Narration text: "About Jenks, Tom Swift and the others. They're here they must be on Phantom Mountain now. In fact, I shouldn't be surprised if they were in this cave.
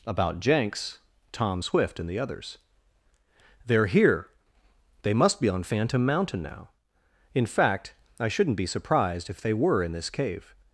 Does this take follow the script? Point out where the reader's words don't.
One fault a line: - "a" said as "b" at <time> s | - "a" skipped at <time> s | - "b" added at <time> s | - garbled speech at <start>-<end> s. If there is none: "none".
none